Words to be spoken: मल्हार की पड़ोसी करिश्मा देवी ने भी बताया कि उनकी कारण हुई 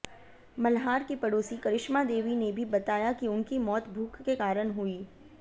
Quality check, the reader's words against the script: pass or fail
fail